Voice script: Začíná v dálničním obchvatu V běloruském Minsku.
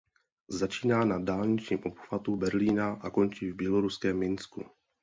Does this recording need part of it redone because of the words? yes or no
yes